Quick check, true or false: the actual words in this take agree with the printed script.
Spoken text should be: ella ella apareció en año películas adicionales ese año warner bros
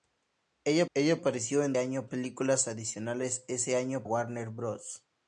true